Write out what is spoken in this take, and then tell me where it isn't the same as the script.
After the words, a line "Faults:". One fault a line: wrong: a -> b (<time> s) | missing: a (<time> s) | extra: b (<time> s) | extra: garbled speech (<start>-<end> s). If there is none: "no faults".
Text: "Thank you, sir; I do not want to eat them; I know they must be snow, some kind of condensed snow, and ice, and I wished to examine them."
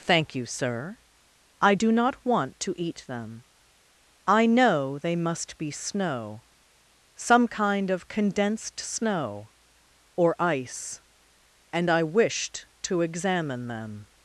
"Thank you, sir; I do not want to eat them; I know they must be snow, some kind of condensed snow, or ice, and I wished to examine them."
Faults:
wrong: and -> or (10.1 s)